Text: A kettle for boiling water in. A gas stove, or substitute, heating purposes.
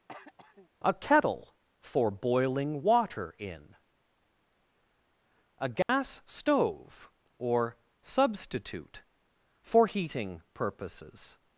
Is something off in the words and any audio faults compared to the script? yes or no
yes